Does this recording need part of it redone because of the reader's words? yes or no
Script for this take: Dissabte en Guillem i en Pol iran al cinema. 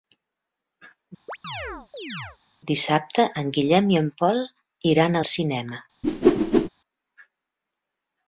no